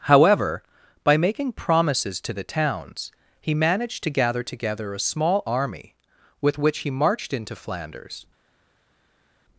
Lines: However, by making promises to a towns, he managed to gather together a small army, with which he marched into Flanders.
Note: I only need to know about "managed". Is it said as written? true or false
true